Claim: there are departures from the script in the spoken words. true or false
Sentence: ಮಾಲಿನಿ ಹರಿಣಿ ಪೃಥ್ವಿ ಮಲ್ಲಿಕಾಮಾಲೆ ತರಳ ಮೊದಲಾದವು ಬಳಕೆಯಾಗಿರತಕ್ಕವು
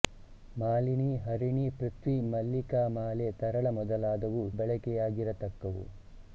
false